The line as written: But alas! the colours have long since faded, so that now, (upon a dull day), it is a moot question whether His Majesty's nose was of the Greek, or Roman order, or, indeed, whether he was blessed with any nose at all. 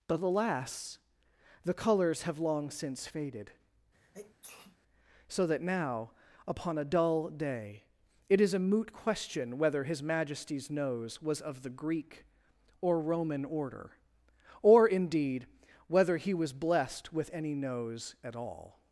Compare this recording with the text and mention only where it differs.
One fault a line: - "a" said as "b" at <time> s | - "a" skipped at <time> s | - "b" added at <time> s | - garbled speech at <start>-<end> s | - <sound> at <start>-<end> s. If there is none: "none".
- sneeze at 3.9-4.8 s